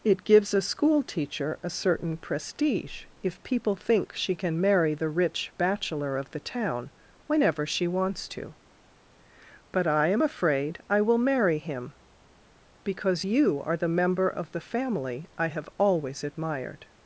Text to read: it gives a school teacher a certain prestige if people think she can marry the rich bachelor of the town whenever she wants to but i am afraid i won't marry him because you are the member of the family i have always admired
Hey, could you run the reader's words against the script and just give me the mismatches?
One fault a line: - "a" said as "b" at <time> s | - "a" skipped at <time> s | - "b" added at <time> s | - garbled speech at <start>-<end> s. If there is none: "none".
- "won't" said as "will" at 11.0 s